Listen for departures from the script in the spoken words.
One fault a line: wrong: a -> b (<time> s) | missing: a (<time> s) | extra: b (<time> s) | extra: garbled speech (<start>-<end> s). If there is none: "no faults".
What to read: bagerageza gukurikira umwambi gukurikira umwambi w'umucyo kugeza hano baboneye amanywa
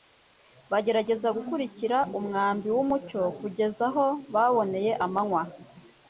missing: gukurikira umwambi (2.7 s)
wrong: hano -> aho (3.9 s)